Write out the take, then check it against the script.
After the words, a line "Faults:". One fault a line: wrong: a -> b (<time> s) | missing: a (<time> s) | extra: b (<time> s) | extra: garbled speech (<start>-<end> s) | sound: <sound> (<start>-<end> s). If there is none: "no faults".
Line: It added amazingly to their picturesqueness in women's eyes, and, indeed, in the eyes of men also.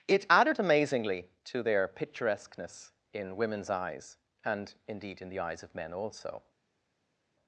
It added amazingly to their picturesqueness in women's eyes, and, indeed, in the eyes of men also.
Faults:
no faults